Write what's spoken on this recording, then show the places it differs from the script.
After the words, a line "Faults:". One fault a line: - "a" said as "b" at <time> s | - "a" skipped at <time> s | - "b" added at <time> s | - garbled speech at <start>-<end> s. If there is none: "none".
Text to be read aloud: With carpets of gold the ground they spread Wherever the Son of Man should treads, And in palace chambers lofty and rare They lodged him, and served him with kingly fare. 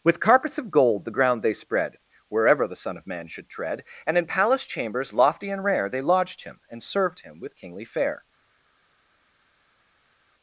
With carpets of gold the ground they spread Wherever the Son of Man should tread, And in palace chambers lofty and rare They lodged him, and served him with kingly fare.
Faults:
- "treads" said as "tread" at 3.5 s